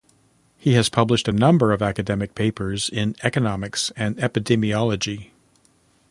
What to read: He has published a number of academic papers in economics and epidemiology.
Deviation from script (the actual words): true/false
false